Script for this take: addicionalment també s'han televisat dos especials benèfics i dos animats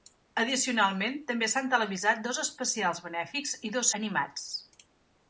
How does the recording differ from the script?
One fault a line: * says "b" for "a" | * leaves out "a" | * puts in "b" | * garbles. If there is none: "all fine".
all fine